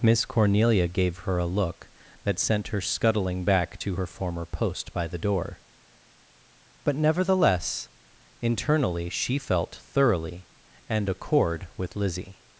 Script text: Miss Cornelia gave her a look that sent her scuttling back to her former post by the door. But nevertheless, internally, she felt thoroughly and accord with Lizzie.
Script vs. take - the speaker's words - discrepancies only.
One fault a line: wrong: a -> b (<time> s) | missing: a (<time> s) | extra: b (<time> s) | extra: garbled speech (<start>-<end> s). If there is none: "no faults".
no faults